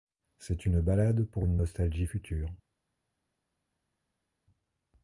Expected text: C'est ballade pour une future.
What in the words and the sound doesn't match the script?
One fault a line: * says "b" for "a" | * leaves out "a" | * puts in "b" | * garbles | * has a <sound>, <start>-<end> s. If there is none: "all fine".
* puts in "une"
* puts in "nostalgie"